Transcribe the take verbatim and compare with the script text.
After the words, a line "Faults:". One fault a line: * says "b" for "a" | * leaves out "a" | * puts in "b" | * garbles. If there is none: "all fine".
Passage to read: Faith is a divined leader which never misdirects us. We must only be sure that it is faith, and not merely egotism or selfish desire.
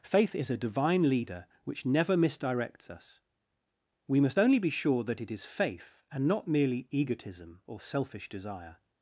Faith is a divine leader which never misdirects us. We must only be sure that it is faith, and not merely egotism or selfish desire.
Faults:
* says "divine" for "divined"